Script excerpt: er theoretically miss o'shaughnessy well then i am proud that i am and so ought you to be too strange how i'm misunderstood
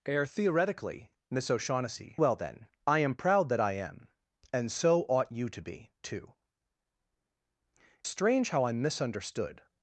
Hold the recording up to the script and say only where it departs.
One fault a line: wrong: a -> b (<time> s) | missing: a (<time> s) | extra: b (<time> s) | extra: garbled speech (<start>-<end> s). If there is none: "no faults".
no faults